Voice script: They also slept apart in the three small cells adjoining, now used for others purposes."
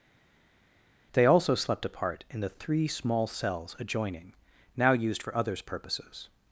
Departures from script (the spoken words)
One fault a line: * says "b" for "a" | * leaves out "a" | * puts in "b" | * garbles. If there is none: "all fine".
all fine